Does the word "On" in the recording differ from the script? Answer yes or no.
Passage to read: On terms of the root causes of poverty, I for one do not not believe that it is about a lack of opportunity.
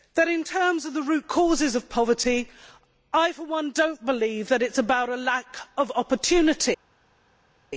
yes